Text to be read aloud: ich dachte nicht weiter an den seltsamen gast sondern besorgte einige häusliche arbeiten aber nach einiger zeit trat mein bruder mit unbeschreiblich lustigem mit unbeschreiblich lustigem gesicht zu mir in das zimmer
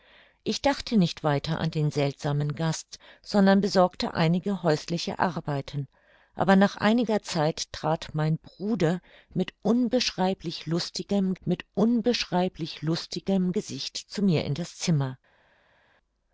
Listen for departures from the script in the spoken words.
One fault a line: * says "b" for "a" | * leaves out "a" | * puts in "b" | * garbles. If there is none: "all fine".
all fine